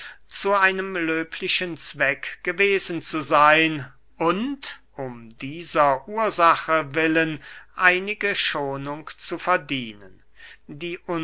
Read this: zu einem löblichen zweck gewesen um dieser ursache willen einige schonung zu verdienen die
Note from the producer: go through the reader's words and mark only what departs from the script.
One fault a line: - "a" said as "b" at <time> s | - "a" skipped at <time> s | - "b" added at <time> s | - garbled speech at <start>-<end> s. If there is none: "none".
- "zu seyn und" added at 3.0 s